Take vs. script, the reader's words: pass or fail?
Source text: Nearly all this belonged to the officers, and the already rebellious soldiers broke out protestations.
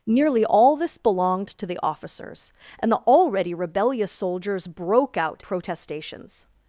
pass